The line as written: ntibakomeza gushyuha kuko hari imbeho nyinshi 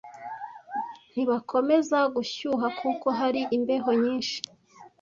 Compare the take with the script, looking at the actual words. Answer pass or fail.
pass